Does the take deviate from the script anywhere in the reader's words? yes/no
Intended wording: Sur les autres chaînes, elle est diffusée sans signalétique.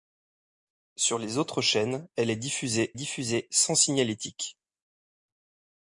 yes